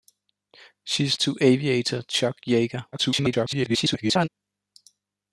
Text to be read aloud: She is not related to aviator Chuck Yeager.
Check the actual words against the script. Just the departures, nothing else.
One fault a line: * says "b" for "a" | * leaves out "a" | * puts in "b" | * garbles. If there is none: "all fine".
* leaves out "not related"
* garbles